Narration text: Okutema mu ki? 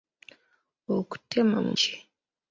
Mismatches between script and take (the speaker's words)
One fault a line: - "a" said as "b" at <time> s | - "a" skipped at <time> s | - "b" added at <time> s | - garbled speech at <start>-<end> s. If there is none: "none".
none